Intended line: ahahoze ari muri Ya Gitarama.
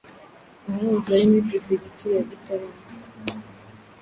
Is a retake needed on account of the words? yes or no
yes